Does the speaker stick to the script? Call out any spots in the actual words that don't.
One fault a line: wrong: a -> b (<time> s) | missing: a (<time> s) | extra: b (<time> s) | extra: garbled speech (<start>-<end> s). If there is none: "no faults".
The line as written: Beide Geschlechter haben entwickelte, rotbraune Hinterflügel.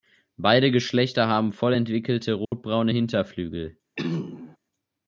extra: voll (1.5 s)